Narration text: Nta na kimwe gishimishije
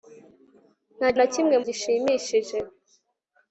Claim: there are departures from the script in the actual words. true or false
false